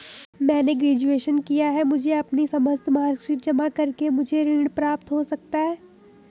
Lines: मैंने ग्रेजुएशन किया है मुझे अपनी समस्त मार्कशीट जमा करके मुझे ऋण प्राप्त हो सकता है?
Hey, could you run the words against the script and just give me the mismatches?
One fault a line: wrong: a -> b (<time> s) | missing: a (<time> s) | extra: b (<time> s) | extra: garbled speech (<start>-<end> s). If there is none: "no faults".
no faults